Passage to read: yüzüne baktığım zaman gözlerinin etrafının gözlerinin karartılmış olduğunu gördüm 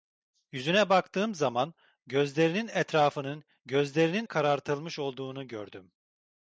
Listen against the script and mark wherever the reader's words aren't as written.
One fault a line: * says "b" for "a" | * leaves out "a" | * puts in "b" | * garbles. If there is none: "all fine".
all fine